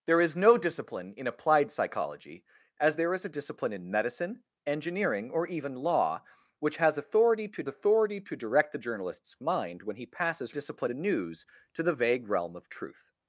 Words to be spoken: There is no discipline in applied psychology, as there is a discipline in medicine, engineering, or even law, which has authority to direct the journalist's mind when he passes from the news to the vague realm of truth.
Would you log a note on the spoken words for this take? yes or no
yes